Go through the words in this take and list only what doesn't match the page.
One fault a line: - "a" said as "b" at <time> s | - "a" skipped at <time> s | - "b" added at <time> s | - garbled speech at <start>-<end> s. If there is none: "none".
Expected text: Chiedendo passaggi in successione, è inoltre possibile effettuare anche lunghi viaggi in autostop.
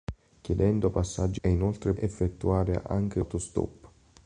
- "in successione" skipped at 1.4 s
- "possibile" skipped at 1.9 s
- "lunghi viaggi in" skipped at 3.2 s